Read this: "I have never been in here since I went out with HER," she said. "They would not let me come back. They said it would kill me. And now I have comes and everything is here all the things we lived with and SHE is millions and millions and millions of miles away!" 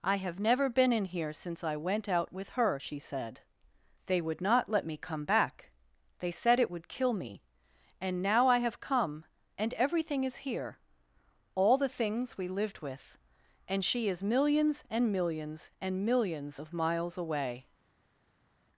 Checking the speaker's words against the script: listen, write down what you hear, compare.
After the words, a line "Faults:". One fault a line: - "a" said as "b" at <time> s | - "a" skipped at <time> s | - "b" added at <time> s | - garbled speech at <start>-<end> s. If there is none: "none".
"I have never been in here since I went out with HER," she said. "They would not let me come back. They said it would kill me. And now I have come and everything is here all the things we lived with and SHE is millions and millions and millions of miles away!"
Faults:
- "comes" said as "come" at 8.8 s